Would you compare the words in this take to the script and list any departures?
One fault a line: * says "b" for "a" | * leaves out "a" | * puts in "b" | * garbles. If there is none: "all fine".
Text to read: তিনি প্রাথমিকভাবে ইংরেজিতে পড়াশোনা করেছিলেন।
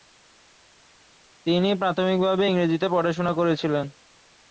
all fine